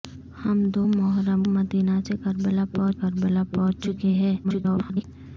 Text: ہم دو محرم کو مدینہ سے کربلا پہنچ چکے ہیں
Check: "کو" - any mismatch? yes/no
yes